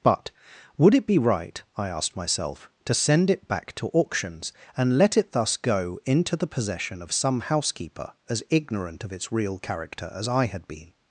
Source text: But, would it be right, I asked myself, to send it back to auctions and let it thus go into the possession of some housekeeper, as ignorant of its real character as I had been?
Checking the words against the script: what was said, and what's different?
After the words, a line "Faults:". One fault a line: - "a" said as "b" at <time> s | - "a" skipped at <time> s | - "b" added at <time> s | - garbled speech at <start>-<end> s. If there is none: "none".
But, would it be right, I asked myself, to send it back to auctions and let it thus go into the possession of some housekeeper, as ignorant of its real character as I had been?
Faults:
none